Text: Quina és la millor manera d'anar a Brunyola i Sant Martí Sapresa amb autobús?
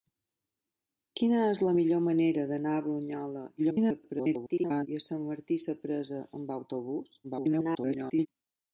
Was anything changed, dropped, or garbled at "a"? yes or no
no